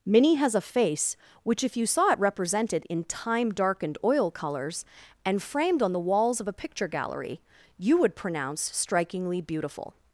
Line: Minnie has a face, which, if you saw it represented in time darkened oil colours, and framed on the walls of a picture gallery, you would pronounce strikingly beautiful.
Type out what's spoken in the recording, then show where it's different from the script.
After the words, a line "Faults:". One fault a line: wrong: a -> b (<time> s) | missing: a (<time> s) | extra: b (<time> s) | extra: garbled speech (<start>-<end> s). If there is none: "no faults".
Minnie has a face, which, if you saw it represented in time darkened oil colours, and framed on the walls of a picture gallery, you would pronounce strikingly beautiful.
Faults:
no faults